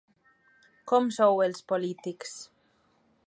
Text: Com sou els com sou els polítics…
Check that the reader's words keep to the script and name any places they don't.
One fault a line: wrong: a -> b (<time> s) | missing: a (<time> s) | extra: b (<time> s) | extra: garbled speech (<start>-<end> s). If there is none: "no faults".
missing: com sou els (1.6 s)